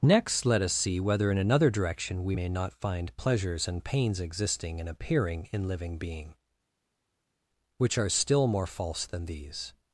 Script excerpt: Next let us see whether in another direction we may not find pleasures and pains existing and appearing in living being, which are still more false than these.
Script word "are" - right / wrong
right